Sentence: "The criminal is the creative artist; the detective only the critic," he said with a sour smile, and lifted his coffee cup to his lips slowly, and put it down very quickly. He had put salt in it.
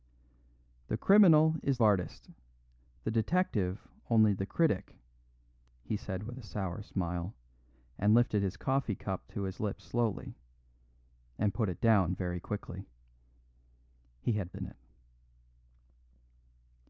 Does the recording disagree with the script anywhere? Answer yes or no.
yes